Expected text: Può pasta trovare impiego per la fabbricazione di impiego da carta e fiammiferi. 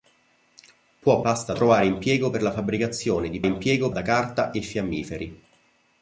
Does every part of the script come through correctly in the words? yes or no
yes